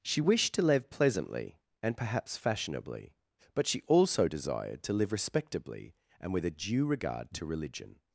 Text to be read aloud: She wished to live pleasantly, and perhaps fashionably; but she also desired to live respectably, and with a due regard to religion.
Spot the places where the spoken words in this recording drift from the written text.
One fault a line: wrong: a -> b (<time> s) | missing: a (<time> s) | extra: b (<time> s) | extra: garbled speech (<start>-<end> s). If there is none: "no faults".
no faults